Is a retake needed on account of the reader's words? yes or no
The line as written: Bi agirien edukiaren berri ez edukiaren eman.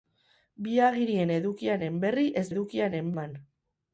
no